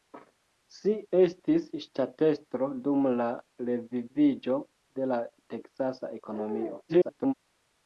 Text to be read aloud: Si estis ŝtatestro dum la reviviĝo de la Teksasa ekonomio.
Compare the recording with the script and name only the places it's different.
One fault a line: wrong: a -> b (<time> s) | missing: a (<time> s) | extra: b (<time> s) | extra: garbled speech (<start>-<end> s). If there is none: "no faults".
extra: garbled speech (6.9-7.3 s)